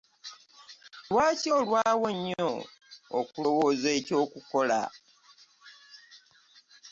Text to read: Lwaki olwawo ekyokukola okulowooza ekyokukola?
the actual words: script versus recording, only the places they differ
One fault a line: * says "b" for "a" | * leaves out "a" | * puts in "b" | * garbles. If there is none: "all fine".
* says "nnyo" for "ekyokukola"